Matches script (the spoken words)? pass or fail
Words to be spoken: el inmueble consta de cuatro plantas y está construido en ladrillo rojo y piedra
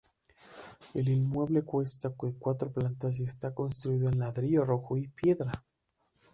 pass